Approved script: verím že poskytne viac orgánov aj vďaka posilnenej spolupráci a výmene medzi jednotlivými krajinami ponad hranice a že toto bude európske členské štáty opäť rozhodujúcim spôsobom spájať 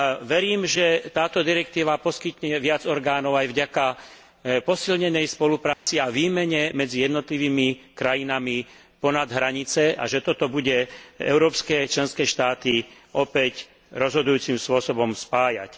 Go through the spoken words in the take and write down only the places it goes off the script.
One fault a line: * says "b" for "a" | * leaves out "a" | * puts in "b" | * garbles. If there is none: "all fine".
* puts in "táto direktíva"